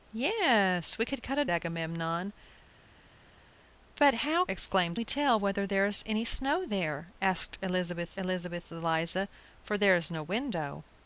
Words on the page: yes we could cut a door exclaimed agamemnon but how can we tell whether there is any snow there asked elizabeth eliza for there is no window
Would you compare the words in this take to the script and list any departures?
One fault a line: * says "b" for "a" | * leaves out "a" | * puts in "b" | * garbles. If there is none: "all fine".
* leaves out "door exclaimed"
* says "exclaimed" for "can"
* puts in "elizabeth"